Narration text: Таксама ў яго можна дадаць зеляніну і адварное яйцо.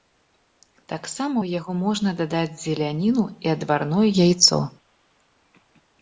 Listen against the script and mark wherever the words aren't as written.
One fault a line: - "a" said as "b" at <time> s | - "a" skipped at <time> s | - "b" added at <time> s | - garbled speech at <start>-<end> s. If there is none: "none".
none